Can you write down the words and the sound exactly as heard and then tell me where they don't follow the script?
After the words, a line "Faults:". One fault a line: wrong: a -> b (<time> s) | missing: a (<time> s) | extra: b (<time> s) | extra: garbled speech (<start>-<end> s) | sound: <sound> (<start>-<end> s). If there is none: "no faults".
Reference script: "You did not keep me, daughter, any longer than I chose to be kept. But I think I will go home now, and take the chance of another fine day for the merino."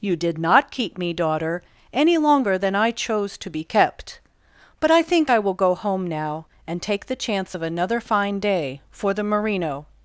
"You did not keep me, daughter, any longer than I chose to be kept. But I think I will go home now, and take the chance of another fine day for the merino."
Faults:
no faults